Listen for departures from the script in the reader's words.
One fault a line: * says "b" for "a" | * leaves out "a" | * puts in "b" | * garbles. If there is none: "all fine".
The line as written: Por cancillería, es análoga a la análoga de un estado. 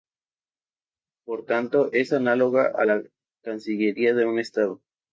* says "tanto" for "cancillería"
* says "cancillería" for "análoga"